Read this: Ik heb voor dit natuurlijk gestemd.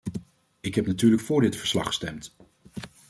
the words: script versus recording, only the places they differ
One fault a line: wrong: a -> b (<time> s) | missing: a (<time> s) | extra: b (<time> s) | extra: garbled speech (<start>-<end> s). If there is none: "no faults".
extra: natuurlijk (0.9 s)
wrong: natuurlijk -> verslag (1.6 s)